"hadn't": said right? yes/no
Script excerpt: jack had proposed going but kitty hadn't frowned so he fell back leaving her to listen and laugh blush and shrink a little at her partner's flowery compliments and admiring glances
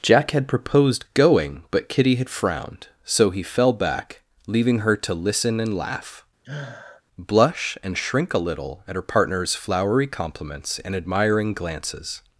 no